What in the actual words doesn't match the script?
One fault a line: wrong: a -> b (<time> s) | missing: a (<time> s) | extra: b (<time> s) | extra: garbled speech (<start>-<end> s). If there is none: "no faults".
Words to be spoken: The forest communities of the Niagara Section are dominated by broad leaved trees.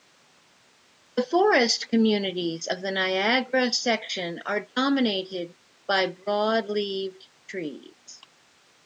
no faults